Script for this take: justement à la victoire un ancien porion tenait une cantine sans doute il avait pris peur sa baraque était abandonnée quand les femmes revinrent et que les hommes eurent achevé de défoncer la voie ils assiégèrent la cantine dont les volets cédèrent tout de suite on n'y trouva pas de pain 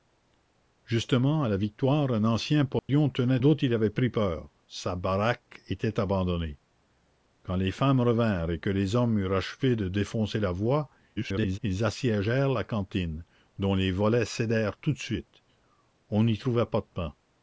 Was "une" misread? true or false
true